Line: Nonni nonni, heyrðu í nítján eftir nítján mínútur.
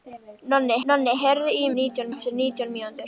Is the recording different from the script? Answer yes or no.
no